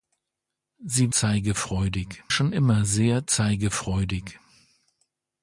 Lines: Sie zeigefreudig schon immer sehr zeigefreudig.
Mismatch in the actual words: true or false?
false